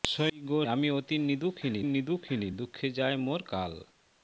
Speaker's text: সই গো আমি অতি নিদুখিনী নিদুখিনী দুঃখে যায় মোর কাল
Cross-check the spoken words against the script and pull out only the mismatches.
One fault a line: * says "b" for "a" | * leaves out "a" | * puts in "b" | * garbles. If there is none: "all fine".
all fine